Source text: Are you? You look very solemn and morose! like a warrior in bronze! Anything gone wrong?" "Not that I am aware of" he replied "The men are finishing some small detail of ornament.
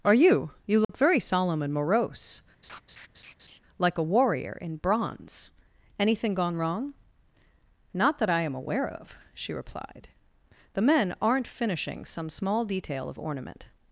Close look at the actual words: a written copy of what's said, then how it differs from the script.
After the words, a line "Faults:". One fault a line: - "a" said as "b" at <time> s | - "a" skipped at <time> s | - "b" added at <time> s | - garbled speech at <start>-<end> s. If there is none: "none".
Are you? You look very solemn and morose! like a warrior in bronze! Anything gone wrong?" "Not that I am aware of" she replied "The men aren't finishing some small detail of ornament.
Faults:
- "he" said as "she" at 9.3 s
- "are" said as "aren't" at 11.2 s